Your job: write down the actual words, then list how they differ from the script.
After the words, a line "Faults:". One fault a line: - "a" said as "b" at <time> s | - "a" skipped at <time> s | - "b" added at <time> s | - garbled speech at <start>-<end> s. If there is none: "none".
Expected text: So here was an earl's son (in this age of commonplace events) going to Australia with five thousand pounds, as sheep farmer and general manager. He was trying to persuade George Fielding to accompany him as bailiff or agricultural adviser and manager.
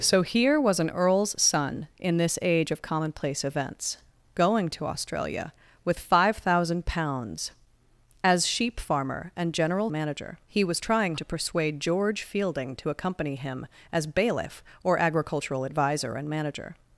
So here was an earl's son (in this age of commonplace events) going to Australia with five thousand pounds, as sheep farmer and general manager. He was trying to persuade George Fielding to accompany him as bailiff or agricultural adviser and manager.
Faults:
none